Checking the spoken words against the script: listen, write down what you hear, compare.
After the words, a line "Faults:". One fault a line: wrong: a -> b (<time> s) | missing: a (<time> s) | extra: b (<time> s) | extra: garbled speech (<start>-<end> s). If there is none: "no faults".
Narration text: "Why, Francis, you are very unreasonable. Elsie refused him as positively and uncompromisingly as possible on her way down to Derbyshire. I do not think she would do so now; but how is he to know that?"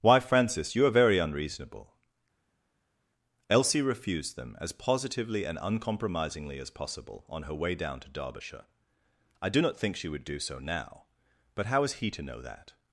"Why, Francis, you are very unreasonable. Elsie refused them as positively and uncompromisingly as possible on her way down to Derbyshire. I do not think she would do so now; but how is he to know that?"
Faults:
wrong: him -> them (4.4 s)